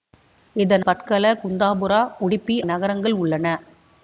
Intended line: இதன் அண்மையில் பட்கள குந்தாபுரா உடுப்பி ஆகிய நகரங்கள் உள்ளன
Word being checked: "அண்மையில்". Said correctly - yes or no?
no